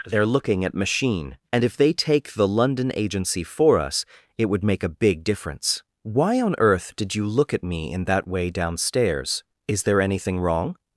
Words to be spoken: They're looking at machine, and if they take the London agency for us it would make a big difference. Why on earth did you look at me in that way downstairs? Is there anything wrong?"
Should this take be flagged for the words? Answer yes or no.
no